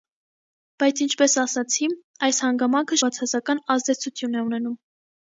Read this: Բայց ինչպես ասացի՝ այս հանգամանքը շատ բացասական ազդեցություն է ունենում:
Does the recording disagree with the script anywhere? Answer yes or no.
yes